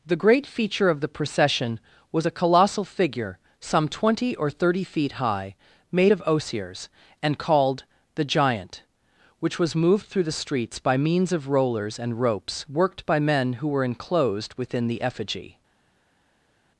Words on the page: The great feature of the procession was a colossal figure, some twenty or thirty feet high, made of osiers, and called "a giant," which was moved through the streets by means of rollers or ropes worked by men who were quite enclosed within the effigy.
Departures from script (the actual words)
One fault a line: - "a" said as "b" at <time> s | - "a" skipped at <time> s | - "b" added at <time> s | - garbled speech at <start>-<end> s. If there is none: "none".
- "a" said as "the" at 8.1 s
- "or" said as "and" at 12.0 s
- "quite" skipped at 13.8 s